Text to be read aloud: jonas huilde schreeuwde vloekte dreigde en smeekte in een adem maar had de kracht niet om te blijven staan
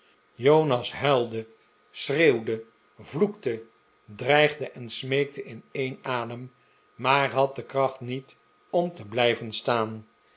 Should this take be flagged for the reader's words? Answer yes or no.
no